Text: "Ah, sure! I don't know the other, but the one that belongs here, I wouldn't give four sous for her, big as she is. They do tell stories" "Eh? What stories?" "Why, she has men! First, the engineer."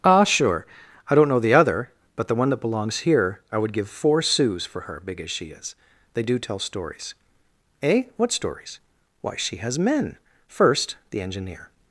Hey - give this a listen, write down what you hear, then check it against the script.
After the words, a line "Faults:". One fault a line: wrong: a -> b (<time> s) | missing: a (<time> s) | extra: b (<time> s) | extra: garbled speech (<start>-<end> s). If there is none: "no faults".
"Ah, sure! I don't know the other, but the one that belongs here, I would give four sous for her, big as she is. They do tell stories" "Eh? What stories?" "Why, she has men! First, the engineer."
Faults:
wrong: wouldn't -> would (3.6 s)